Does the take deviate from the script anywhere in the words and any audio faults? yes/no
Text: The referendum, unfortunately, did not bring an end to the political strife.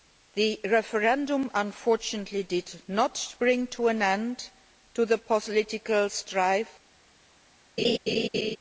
yes